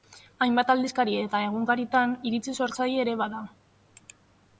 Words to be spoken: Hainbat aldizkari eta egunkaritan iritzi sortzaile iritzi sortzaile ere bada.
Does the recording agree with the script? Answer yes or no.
no